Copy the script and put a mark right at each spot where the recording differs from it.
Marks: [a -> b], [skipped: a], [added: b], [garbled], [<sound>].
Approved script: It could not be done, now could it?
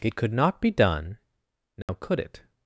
It could not be done, now [dropout] could it?